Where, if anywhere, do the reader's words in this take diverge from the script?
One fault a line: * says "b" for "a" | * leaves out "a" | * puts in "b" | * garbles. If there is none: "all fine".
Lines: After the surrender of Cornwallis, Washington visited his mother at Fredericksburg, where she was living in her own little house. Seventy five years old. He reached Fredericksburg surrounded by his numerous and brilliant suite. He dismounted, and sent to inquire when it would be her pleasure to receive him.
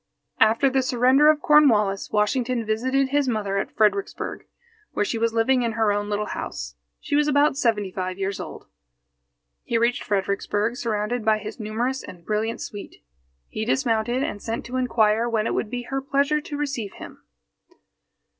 * puts in "She was about"